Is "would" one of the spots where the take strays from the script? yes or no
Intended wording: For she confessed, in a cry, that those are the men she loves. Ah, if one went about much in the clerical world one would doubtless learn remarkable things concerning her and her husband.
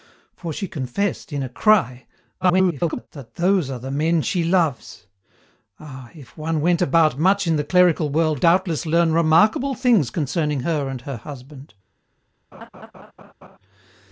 yes